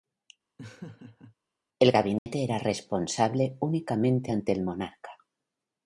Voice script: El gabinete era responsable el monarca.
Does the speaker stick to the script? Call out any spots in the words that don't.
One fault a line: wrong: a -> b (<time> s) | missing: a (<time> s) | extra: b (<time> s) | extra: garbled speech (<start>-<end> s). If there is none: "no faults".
extra: únicamente ante (3.6 s)